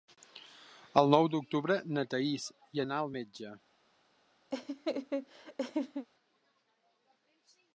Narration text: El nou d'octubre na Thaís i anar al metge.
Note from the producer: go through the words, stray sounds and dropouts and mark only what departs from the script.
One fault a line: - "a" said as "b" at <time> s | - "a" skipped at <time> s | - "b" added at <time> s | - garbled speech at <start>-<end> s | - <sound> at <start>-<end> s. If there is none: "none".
- laugh at 4.5-6.1 s